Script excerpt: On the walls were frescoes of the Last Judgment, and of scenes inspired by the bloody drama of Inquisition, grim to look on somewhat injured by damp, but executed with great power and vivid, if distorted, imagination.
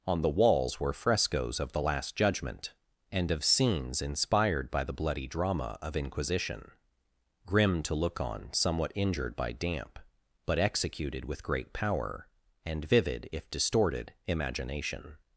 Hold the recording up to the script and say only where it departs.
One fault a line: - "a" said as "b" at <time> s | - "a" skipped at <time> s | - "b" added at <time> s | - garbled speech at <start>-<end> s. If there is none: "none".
none